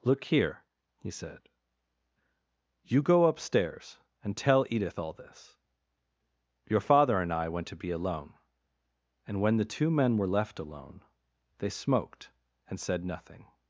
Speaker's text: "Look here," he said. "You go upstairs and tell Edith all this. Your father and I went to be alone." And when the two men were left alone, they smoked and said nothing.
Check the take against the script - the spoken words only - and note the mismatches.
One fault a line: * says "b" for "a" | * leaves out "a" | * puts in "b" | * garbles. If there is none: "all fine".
all fine